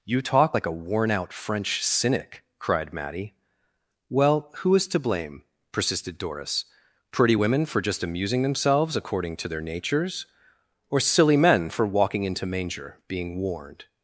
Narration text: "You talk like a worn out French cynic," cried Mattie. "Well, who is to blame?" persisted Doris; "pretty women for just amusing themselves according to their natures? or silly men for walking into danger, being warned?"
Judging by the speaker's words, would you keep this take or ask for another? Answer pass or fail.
fail